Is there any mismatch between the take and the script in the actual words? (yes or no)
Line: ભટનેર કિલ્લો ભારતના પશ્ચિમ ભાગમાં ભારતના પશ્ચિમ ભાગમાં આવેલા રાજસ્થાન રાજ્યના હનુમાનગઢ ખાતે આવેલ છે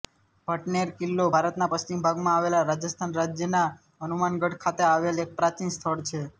yes